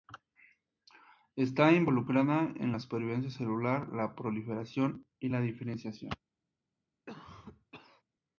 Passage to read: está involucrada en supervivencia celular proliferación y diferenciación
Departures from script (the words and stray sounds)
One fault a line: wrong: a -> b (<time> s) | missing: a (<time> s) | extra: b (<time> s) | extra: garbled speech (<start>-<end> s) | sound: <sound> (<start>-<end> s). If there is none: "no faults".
extra: la (2.7 s)
extra: la (3.9 s)
extra: la (5.3 s)
sound: cough (7.1-8.0 s)